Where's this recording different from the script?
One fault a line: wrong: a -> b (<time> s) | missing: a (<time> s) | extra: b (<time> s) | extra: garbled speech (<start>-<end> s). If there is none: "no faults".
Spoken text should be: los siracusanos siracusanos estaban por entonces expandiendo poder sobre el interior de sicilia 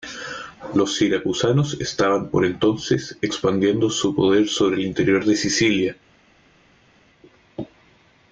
missing: siracusanos (1.8 s)
extra: su (3.9 s)